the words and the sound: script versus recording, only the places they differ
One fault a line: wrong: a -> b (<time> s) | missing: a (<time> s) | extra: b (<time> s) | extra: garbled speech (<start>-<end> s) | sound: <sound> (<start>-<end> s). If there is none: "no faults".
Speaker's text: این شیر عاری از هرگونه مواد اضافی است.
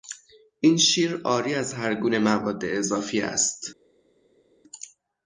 no faults